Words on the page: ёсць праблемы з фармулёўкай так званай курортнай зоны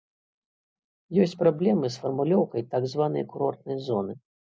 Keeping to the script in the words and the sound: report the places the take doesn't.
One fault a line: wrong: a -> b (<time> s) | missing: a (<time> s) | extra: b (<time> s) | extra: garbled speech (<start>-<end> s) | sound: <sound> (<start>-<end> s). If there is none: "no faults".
no faults